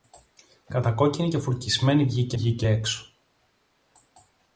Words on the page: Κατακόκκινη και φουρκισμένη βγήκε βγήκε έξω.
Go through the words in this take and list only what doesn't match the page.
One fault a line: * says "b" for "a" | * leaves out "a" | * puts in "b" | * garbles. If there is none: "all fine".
all fine